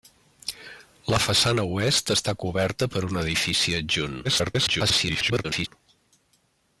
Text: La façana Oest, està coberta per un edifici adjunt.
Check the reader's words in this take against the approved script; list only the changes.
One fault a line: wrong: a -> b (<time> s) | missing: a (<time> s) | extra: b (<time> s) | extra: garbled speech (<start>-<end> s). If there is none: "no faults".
extra: garbled speech (4.2-5.7 s)